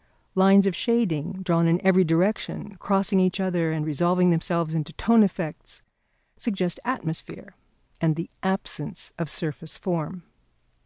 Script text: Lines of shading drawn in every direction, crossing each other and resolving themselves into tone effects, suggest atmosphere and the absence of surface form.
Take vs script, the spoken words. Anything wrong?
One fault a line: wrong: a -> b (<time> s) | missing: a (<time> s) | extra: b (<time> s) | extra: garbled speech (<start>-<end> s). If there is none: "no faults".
no faults